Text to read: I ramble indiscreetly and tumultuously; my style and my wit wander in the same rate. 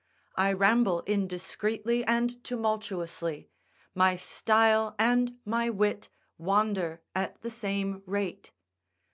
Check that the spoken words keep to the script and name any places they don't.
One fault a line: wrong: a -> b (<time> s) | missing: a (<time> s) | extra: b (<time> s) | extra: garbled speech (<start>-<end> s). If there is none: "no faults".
wrong: in -> at (7.2 s)